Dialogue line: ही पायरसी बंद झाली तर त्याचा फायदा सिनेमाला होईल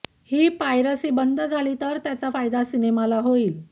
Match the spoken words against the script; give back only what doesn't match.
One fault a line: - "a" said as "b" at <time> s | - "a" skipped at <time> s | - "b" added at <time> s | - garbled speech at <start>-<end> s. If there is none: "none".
none